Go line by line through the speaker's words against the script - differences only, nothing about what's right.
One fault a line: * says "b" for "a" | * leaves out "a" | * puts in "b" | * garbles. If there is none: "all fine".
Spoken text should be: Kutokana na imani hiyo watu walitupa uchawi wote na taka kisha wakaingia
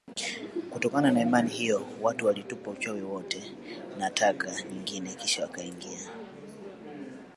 * puts in "nyingine"